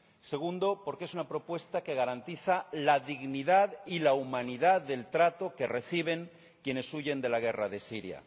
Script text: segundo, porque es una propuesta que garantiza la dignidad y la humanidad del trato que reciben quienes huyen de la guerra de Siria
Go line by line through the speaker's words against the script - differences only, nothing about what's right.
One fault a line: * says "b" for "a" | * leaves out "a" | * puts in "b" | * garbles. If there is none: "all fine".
all fine